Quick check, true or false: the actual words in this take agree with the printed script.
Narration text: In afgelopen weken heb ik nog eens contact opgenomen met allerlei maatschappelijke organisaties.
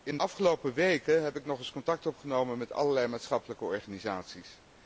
true